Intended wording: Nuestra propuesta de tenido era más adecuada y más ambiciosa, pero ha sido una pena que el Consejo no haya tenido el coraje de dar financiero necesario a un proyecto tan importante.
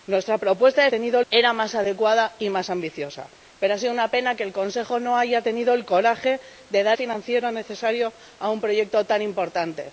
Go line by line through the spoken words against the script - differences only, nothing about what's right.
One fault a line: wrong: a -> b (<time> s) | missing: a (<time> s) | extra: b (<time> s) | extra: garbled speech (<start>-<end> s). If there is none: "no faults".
no faults